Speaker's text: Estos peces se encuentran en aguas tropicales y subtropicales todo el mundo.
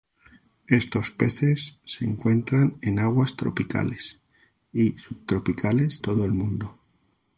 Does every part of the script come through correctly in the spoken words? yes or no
yes